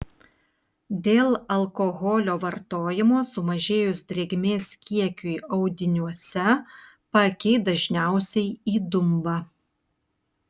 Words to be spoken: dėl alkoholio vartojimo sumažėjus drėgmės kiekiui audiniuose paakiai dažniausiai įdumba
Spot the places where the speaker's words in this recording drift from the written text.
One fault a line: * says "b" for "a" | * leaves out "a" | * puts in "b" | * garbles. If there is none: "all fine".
all fine